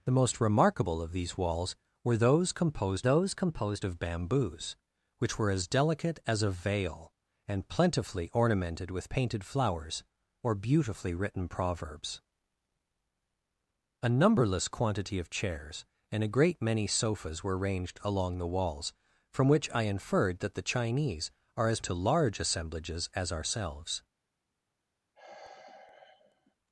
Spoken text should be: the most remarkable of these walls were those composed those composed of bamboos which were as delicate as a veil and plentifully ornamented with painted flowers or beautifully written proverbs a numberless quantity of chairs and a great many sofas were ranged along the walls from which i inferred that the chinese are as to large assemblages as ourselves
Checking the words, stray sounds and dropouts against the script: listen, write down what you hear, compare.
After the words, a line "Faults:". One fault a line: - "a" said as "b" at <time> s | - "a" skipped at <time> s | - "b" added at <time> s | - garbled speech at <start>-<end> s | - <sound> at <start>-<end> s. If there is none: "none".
the most remarkable of these walls were those composed those composed of bamboos which were as delicate as a veil and plentifully ornamented with painted flowers or beautifully written proverbs a numberless quantity of chairs and a great many sofas were ranged along the walls from which i inferred that the chinese are as to large assemblages as ourselves
Faults:
- sigh at 25.2-26.6 s